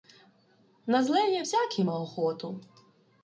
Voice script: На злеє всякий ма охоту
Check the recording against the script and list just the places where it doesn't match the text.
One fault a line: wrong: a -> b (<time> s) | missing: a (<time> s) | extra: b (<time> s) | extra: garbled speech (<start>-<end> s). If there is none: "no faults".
no faults